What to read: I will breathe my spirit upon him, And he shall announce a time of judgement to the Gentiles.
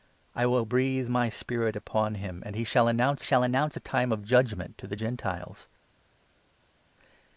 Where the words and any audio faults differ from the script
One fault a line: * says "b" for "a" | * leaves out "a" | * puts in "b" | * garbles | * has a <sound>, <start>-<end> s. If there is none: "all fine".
* puts in "shall announce"